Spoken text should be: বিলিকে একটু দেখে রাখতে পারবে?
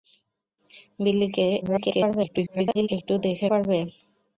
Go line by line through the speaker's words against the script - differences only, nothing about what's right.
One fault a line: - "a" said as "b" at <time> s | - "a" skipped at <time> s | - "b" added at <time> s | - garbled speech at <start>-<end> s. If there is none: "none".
- garbled speech at 1.6-2.9 s
- "রাখতে" skipped at 3.5 s